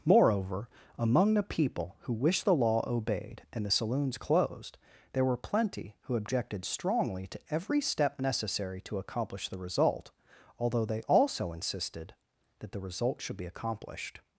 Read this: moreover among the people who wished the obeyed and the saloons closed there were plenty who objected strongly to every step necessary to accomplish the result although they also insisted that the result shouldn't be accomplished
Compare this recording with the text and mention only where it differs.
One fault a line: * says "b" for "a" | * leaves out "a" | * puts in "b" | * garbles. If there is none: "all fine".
* puts in "law"
* says "should" for "shouldn't"